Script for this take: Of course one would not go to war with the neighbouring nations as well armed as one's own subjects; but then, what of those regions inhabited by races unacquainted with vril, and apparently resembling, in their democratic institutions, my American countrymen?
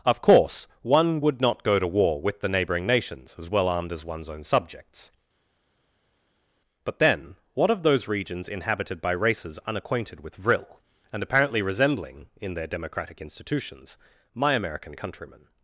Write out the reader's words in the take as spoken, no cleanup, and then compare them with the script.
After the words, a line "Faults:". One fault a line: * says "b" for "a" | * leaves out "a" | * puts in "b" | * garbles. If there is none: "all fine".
Of course one would not go to war with the neighbouring nations as well armed as one's own subjects; but then, what of those regions inhabited by races unacquainted with vril, and apparently resembling, in their democratic institutions, my American countrymen?
Faults:
all fine